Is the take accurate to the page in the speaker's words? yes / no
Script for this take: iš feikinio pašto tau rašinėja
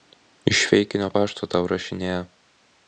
yes